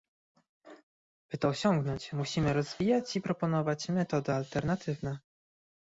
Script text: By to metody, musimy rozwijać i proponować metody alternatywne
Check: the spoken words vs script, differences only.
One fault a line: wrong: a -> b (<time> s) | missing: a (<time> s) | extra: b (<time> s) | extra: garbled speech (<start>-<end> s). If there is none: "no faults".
wrong: metody -> osiągnąć (1.5 s)